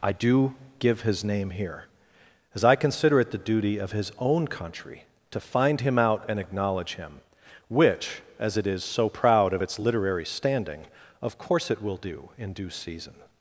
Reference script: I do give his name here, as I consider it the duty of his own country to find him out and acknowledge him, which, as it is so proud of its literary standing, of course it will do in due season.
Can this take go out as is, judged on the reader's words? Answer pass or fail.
pass